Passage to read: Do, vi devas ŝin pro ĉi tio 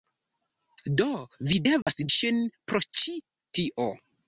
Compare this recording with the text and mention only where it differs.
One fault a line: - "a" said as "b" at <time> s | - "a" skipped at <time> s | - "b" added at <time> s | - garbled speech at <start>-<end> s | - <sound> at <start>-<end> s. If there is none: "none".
- dropout at 1.8-1.9 s